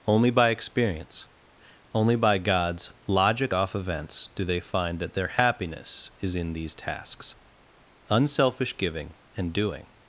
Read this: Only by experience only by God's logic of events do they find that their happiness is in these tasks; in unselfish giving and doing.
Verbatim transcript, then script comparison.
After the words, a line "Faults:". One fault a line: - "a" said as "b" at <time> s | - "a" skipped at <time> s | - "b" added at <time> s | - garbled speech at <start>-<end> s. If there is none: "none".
Only by experience only by God's logic off events do they find that their happiness is in these tasks; unselfish giving and doing.
Faults:
- "of" said as "off" at 3.5 s
- "in" skipped at 7.3 s